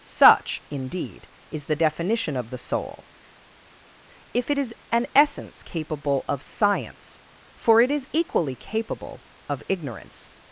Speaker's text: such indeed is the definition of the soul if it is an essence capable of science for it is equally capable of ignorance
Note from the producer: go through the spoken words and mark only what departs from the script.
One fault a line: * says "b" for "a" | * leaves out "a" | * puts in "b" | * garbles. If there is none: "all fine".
all fine